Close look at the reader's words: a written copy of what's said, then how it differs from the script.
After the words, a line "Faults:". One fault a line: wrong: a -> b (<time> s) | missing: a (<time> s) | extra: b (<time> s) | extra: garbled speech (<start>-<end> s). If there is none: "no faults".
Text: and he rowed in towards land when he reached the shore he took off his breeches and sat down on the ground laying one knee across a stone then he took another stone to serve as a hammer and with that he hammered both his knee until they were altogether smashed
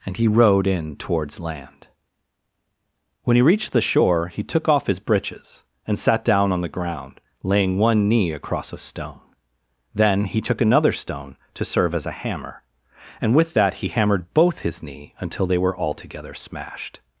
and he rowed in towards land when he reached the shore he took off his breeches and sat down on the ground laying one knee across a stone then he took another stone to serve as a hammer and with that he hammered both his knee until they were altogether smashed
Faults:
no faults